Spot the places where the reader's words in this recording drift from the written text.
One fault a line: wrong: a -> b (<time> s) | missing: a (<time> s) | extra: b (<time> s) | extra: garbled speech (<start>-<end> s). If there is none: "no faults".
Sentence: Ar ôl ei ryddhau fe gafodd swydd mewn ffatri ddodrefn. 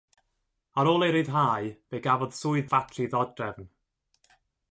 missing: mewn (2.7 s)